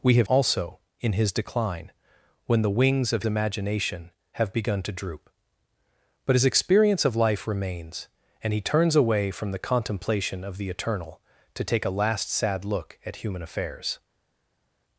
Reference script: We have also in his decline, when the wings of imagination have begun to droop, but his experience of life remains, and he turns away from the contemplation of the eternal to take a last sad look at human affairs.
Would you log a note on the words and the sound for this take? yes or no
no